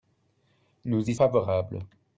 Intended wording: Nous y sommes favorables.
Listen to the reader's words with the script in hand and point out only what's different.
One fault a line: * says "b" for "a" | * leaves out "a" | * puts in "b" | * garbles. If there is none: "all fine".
* leaves out "sommes"